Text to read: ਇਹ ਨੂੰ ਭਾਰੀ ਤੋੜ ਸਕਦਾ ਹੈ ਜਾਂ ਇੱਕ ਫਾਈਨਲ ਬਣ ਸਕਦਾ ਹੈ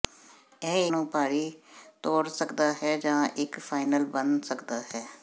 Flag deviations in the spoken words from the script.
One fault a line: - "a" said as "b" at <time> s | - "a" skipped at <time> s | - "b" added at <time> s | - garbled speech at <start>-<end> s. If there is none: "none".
none